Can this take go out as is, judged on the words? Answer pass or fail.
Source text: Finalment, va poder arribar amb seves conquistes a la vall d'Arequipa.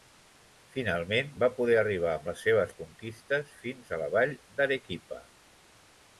fail